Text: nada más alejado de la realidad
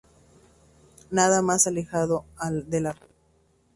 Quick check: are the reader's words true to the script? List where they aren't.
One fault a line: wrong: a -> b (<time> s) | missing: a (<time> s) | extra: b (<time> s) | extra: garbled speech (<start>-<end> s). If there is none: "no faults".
no faults